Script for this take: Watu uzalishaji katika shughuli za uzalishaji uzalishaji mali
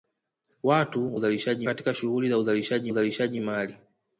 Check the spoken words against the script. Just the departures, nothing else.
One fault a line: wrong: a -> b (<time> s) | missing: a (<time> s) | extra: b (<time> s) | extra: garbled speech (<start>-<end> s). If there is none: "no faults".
no faults